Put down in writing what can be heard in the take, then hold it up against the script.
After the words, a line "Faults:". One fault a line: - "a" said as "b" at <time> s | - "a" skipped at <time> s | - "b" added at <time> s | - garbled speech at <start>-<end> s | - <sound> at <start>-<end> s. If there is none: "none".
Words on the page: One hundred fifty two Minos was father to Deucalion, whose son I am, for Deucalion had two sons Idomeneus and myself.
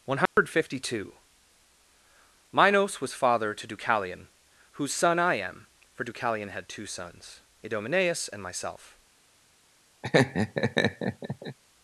One hundred fifty two Minos was father to Deucalion, whose son I am, for Deucalion had two sons Idomeneus and myself.
Faults:
- dropout at 0.3-0.4 s
- laugh at 10.0-11.6 s